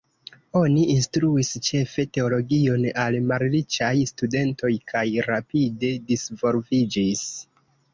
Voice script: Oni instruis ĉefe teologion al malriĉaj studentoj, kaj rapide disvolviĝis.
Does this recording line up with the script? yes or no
yes